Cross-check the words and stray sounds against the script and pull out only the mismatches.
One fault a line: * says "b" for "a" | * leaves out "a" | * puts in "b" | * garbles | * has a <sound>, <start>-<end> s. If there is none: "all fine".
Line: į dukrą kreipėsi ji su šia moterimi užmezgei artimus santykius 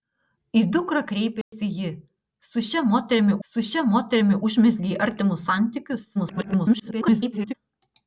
* has a dropout, 1.4-1.5 s
* puts in "su šia moterimi"
* garbles